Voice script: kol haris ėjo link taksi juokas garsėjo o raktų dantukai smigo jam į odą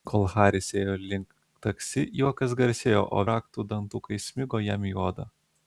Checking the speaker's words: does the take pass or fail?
pass